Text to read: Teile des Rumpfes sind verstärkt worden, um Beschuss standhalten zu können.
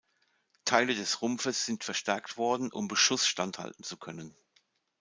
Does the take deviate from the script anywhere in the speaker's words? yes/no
no